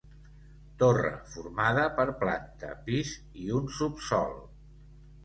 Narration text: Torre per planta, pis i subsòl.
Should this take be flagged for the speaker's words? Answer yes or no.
yes